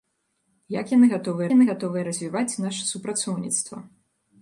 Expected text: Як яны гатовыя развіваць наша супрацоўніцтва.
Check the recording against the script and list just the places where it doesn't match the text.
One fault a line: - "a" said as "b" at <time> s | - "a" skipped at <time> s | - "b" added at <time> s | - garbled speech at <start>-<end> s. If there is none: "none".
- "яны гатовыя" added at 1.5 s